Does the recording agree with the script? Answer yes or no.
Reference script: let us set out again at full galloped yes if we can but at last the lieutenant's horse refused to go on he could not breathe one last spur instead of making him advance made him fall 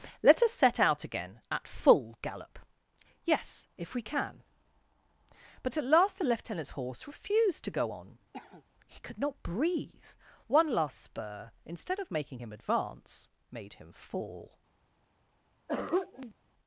no